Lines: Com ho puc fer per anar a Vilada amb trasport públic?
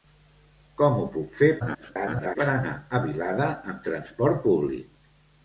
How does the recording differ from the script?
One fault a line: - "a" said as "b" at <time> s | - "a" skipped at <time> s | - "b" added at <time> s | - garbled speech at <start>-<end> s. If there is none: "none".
- garbled speech at 1.6-2.4 s